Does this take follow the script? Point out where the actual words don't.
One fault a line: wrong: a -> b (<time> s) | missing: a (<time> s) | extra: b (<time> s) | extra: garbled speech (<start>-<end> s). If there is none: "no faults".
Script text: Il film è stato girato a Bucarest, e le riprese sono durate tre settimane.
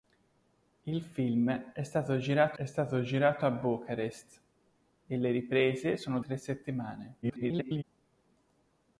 extra: è stato girato (2.5 s)
missing: durate (6.2 s)
extra: garbled speech (7.2-7.8 s)